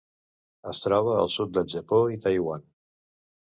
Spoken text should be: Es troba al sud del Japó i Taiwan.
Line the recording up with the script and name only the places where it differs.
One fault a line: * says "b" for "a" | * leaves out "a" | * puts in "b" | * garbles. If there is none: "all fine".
all fine